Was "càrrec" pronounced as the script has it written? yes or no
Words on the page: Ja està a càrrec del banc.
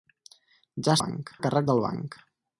yes